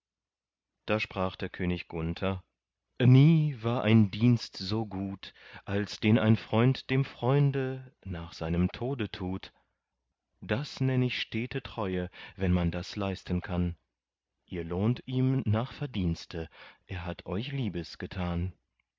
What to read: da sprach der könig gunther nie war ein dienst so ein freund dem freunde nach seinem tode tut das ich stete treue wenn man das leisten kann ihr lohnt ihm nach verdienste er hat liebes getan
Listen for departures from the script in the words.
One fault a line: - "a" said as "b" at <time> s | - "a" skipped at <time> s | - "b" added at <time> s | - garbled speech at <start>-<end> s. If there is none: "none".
- "gut als den" added at 4.9 s
- "nenn" added at 10.8 s
- "euch" added at 17.3 s